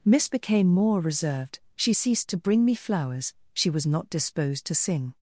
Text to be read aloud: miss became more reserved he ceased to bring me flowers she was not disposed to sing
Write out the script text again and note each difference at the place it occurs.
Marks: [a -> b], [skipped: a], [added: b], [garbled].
miss became more reserved [he -> she] ceased to bring me flowers she was not disposed to sing